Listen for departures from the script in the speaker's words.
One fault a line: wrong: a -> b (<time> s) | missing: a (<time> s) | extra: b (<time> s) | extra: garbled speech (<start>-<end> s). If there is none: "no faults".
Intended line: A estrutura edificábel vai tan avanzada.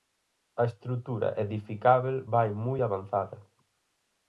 wrong: tan -> moi (2.6 s)